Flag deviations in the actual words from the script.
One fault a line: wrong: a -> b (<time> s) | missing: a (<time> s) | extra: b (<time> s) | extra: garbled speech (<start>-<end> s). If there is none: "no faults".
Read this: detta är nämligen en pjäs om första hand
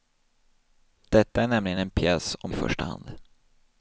no faults